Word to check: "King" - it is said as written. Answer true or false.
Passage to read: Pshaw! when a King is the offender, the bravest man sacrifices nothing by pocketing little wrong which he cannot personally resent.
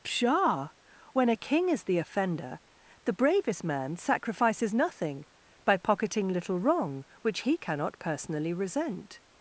true